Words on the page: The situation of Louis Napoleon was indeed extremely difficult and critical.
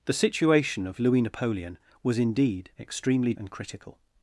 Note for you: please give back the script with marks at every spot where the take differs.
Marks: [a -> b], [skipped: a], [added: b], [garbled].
The situation of Louis Napoleon was indeed extremely [skipped: difficult] and critical.